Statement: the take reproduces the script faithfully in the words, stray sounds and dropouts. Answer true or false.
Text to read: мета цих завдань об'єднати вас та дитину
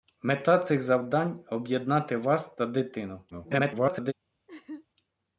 false